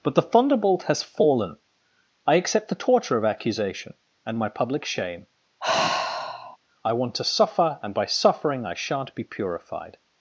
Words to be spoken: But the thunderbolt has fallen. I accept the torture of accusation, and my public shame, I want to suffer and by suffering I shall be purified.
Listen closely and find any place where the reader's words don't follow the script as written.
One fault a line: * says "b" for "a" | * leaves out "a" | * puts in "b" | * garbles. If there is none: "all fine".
* says "shan't" for "shall"